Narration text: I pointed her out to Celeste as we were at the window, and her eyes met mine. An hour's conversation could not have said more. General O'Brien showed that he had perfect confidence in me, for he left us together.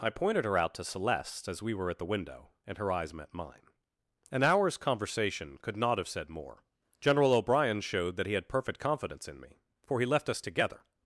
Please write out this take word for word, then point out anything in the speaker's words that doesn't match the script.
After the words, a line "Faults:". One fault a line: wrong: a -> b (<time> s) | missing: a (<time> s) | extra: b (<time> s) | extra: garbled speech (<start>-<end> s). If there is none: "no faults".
I pointed her out to Celeste as we were at the window, and her eyes met mine. An hour's conversation could not have said more. General O'Brien showed that he had perfect confidence in me, for he left us together.
Faults:
no faults